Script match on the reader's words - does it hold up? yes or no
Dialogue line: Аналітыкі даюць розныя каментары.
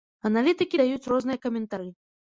yes